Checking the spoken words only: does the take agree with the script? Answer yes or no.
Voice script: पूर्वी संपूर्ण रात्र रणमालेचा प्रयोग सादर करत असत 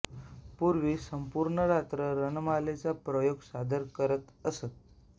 yes